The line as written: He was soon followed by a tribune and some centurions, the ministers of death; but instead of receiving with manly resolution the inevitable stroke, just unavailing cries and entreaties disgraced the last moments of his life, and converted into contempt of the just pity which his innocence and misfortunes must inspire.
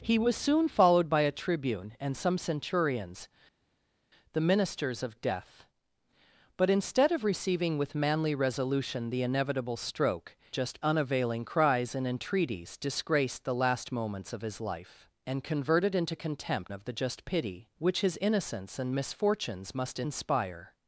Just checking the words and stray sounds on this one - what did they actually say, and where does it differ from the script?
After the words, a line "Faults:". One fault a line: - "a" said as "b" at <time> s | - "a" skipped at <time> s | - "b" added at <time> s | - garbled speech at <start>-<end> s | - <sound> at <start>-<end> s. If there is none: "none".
He was soon followed by a tribune and some centurions, the ministers of death; but instead of receiving with manly resolution the inevitable stroke, just unavailing cries and entreaties disgraced the last moments of his life, and converted into contempt of the just pity which his innocence and misfortunes must inspire.
Faults:
none